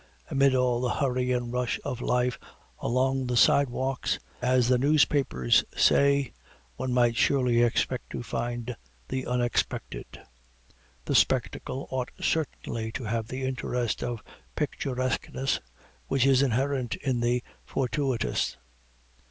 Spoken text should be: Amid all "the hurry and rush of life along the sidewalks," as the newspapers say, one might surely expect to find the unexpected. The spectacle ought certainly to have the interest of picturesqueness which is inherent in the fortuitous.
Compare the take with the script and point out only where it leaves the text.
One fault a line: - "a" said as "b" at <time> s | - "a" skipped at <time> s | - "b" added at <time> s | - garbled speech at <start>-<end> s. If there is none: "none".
none